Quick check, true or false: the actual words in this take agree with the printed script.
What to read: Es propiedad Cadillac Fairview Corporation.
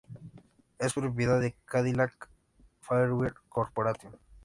false